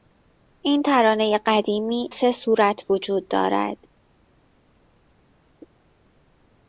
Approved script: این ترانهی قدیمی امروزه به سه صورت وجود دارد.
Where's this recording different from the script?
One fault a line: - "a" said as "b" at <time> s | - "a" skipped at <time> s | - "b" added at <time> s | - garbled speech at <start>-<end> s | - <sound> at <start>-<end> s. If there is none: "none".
- "امروزه به" skipped at 2.1 s